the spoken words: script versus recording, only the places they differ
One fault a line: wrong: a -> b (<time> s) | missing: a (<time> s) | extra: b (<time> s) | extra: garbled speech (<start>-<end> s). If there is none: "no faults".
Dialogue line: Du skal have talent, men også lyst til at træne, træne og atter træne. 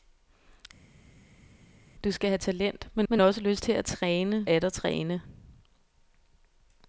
extra: men (3.1 s)
missing: træne og (4.5 s)